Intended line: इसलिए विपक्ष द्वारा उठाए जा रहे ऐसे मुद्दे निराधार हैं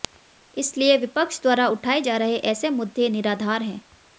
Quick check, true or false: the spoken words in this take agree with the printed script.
true